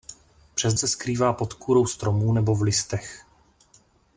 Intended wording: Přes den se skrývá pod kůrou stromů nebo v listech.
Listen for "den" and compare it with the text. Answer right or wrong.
wrong